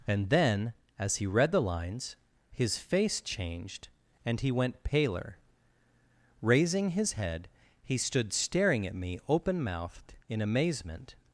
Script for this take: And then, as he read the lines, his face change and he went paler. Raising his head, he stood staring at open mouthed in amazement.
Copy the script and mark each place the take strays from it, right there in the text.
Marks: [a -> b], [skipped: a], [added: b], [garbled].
And then, as he read the lines, his face [change -> changed] and he went paler. Raising his head, he stood staring at [added: me] open mouthed in amazement.